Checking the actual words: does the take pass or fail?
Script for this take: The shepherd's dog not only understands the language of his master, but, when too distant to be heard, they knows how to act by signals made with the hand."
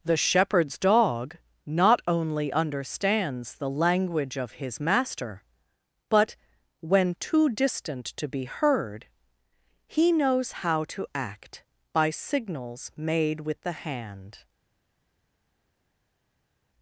fail